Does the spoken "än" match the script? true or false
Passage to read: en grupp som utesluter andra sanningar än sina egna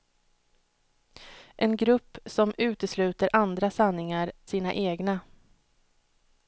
false